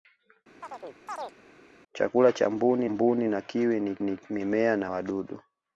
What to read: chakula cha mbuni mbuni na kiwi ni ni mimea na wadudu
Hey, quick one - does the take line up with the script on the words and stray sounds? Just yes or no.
no